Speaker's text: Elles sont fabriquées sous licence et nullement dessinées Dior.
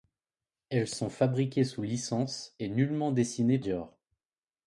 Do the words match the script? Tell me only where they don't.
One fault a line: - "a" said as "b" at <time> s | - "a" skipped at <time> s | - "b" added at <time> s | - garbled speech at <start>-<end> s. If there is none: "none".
none